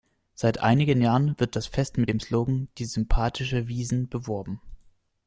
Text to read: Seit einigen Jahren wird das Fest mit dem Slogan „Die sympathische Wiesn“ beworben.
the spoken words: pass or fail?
pass